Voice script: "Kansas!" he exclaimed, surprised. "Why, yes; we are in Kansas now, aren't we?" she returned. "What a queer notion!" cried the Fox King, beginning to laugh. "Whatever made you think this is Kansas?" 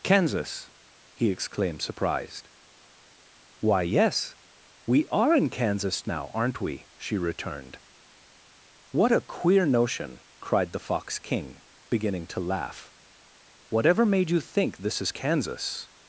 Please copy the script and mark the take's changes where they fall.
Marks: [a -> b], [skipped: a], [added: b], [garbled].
"Kansas!" he exclaimed, surprised. "Why, yes; we are in Kansas now, aren't we?" she returned. "What a queer notion!" cried the Fox King, beginning to laugh. "Whatever made you think this is Kansas?"